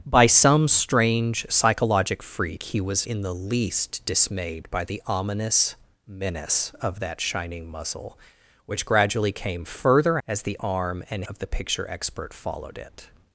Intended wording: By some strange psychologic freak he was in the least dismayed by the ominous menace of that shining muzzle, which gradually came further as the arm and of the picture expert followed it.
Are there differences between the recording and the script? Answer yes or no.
no